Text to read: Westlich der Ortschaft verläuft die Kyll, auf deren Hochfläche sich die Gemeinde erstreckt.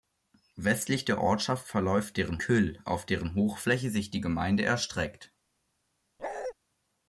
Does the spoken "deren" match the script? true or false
true